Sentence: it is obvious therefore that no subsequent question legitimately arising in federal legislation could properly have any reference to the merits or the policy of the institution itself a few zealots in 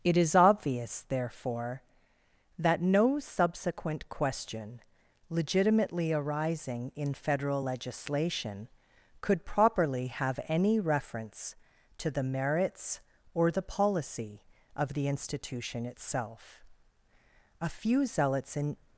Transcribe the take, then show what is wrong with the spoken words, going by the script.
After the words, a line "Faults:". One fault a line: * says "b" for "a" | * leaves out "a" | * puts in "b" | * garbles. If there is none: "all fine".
it is obvious therefore that no subsequent question legitimately arising in federal legislation could properly have any reference to the merits or the policy of the institution itself a few zealots in
Faults:
all fine